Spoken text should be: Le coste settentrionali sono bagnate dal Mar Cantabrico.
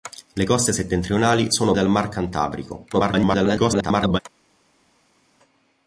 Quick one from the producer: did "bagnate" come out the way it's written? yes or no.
no